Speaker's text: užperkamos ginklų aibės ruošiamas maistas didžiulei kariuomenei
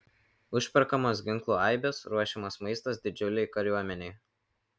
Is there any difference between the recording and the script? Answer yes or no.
no